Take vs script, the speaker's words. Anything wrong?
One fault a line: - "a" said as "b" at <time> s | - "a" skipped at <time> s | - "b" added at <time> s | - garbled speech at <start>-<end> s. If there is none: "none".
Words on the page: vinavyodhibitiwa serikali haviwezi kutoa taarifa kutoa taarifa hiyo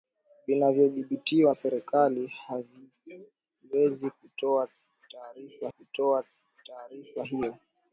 none